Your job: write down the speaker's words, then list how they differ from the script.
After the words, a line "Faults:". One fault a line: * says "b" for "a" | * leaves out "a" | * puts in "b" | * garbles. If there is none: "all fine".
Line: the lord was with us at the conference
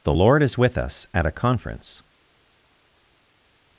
the lord is with us at a conference
Faults:
* says "is" for "was"
* says "a" for "the"